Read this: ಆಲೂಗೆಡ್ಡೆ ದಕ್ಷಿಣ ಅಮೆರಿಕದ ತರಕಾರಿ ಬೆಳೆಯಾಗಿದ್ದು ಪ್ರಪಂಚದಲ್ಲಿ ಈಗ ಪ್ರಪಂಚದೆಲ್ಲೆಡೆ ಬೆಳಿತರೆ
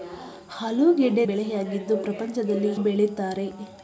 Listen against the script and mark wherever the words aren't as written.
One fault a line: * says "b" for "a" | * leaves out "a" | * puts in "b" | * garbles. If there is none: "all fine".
* leaves out "ದಕ್ಷಿಣ ಅಮೆರಿಕದ ತರಕಾರಿ"
* leaves out "ಈಗ ಪ್ರಪಂಚದೆಲ್ಲೆಡೆ"